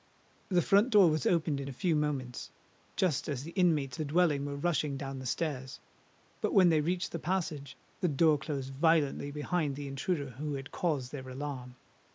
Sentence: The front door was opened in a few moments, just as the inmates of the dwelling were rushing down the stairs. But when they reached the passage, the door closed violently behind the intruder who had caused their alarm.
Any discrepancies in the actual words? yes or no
yes